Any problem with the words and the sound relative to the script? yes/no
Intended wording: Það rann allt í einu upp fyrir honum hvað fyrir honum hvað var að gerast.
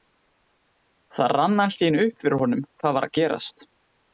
yes